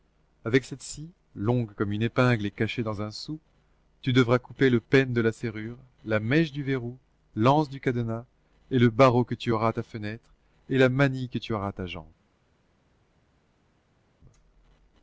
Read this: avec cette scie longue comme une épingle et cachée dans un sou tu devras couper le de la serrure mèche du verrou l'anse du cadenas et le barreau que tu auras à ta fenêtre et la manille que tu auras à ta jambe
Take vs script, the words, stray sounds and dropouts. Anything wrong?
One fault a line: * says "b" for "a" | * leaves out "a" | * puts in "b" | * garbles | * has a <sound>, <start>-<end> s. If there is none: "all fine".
* puts in "pêne"
* puts in "la"